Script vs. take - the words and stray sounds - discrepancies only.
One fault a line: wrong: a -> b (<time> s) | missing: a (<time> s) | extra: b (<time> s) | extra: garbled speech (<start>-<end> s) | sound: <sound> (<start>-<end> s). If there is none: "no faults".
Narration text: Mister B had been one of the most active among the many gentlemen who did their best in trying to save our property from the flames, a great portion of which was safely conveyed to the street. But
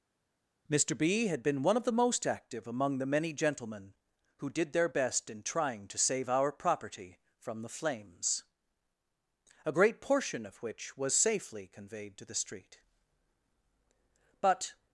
no faults